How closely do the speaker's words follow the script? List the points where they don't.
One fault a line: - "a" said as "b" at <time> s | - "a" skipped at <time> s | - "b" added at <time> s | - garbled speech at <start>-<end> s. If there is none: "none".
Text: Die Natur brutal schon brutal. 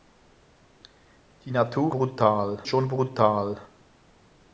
none